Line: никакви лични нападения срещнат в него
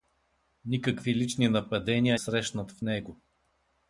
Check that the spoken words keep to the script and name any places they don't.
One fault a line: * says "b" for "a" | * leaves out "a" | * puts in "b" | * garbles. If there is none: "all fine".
all fine